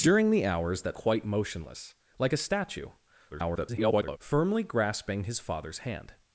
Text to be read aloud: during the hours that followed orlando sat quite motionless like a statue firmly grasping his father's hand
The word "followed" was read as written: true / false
false